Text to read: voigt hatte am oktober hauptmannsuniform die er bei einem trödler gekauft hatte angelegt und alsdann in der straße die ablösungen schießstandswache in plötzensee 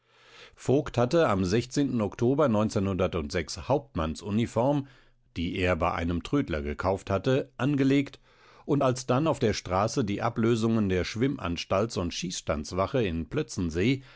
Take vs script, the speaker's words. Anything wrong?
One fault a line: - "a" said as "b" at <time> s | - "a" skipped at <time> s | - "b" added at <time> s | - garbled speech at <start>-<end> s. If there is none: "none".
- "in" said as "auf" at 9.3 s
- "der schwimmanstalts und" added at 10.9 s